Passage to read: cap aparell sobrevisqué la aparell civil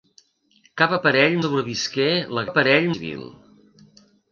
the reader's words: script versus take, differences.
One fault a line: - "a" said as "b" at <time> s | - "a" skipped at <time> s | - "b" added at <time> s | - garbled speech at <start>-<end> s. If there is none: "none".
none